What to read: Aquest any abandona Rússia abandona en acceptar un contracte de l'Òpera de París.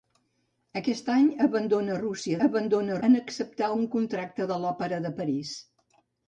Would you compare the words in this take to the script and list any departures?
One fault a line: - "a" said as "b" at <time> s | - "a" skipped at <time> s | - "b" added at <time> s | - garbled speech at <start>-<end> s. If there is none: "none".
none